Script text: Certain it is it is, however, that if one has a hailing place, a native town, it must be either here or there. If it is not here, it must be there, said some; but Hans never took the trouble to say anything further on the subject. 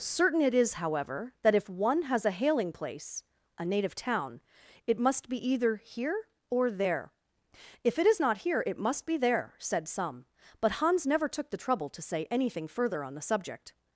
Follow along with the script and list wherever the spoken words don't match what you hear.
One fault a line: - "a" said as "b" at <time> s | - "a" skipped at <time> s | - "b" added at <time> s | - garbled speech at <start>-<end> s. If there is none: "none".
- "it is" skipped at 0.7 s